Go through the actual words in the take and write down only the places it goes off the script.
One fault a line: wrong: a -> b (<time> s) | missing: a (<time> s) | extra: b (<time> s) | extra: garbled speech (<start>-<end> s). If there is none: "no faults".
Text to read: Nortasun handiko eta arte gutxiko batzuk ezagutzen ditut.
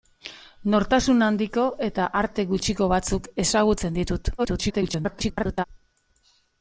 extra: garbled speech (4.4-5.6 s)